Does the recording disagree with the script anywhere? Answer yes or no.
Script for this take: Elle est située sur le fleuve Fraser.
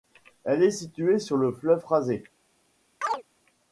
no